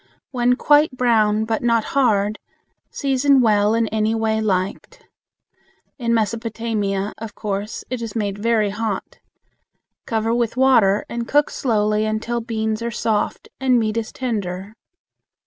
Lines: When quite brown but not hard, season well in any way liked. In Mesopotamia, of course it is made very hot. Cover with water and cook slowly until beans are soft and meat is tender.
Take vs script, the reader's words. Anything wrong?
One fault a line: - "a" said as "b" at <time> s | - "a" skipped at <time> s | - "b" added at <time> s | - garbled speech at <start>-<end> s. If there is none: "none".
none